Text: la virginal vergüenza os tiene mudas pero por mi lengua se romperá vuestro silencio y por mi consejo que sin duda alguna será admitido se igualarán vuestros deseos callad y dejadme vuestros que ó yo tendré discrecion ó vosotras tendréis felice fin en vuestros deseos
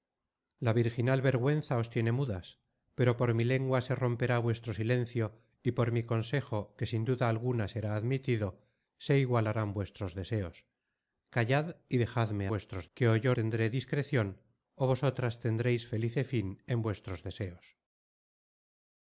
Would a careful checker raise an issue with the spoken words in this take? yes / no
no